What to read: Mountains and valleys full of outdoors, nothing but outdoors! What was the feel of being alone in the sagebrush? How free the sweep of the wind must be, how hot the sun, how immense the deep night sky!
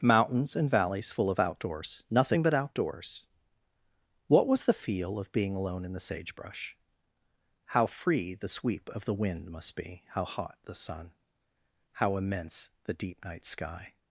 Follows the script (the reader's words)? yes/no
yes